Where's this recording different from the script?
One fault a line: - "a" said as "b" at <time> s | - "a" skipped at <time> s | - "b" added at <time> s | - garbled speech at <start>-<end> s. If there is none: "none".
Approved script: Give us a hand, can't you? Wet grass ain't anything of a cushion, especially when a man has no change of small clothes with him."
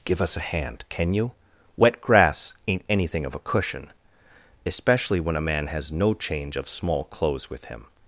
- "can't" said as "can" at 0.9 s